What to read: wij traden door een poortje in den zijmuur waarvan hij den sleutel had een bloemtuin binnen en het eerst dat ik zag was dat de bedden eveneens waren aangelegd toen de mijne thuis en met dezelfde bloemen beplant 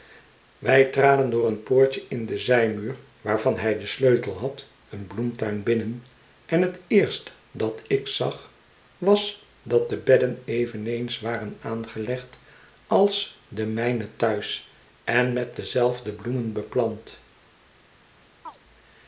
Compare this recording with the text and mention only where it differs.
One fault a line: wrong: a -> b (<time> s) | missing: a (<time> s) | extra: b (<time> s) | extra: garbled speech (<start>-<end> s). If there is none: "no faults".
wrong: toen -> als (12.9 s)